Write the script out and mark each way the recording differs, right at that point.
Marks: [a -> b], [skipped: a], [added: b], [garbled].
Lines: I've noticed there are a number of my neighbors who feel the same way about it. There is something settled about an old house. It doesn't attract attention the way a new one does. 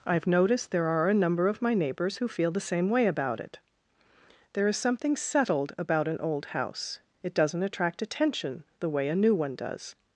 I've noticed there are a number of my neighbors who feel the same way about it. There is something settled about an old house. It doesn't attract attention the way a new one does.